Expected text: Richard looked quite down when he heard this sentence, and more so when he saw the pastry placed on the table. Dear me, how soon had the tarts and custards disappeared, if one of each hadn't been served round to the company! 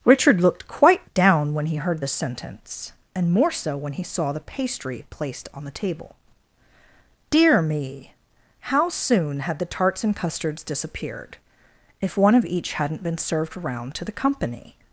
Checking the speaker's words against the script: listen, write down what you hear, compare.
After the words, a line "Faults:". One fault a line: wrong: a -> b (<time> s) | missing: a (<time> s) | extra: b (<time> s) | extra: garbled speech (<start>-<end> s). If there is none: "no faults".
Richard looked quite down when he heard this sentence, and more so when he saw the pastry placed on the table. Dear me, how soon had the tarts and custards disappeared, if one of each hadn't been served round to the company!
Faults:
no faults